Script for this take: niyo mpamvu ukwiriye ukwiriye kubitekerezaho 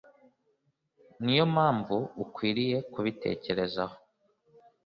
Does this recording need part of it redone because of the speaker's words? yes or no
yes